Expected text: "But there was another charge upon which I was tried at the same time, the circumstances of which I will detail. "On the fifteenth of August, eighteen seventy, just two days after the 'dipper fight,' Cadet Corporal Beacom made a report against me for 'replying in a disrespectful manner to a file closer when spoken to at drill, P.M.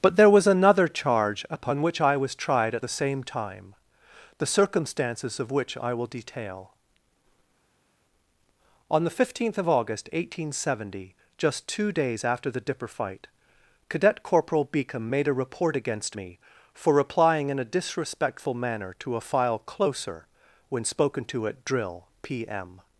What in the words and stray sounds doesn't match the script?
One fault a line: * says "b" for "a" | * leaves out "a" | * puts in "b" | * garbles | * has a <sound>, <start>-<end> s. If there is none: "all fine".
all fine